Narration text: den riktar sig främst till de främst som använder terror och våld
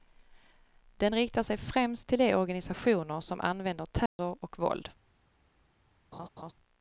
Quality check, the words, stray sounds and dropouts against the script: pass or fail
fail